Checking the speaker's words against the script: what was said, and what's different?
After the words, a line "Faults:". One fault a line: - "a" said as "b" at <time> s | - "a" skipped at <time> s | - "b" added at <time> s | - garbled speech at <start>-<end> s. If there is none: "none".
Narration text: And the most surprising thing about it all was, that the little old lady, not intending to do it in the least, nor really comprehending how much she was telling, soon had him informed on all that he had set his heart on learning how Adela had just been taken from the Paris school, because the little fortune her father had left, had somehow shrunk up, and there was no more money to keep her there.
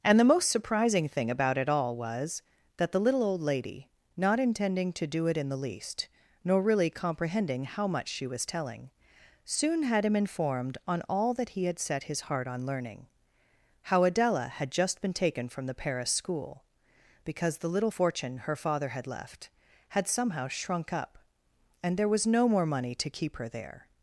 And the most surprising thing about it all was, that the little old lady, not intending to do it in the least, nor really comprehending how much she was telling, soon had him informed on all that he had set his heart on learning how Adela had just been taken from the Paris school, because the little fortune her father had left, had somehow shrunk up, and there was no more money to keep her there.
Faults:
none